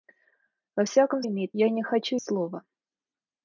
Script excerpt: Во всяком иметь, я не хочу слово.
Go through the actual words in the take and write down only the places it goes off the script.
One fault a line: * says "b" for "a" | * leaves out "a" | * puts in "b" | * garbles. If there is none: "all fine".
all fine